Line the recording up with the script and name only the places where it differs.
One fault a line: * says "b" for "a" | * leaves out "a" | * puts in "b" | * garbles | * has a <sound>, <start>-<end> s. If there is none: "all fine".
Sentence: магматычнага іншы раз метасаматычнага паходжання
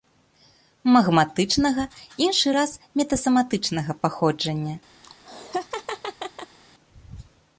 * has a laugh, 5.0-6.6 s